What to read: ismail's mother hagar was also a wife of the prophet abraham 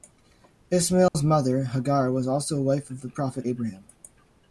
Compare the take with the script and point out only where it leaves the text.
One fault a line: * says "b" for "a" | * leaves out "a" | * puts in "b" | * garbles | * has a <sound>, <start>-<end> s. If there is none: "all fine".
* has a dropout, 1.1-1.1 s